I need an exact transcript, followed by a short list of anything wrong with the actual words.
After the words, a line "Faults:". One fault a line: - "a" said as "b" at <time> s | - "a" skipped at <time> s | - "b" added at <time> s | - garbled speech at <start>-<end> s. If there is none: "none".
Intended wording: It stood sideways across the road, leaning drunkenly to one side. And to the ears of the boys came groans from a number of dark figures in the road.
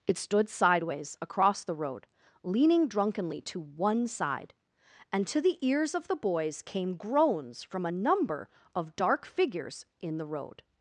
It stood sideways across the road, leaning drunkenly to one side. And to the ears of the boys came groans from a number of dark figures in the road.
Faults:
none